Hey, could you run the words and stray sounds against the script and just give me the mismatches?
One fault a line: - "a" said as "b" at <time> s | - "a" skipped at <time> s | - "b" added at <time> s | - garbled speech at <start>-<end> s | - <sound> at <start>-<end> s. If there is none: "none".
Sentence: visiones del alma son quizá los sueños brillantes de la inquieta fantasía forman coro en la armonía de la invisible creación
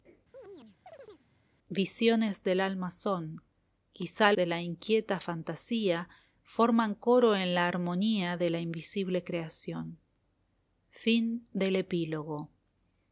- chirp at 0.3-1.3 s
- "los sueños brillantes" skipped at 4.3 s